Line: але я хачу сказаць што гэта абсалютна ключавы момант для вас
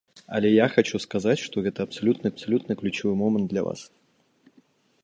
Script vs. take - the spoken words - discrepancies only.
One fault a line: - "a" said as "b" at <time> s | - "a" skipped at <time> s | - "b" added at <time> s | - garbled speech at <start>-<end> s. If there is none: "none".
- "абсалютна" added at 2.3 s